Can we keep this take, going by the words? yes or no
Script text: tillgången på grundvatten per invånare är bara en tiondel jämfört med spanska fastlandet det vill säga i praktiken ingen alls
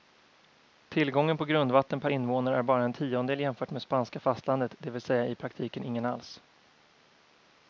yes